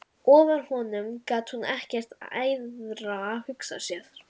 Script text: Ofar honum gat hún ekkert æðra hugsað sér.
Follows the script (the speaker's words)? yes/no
yes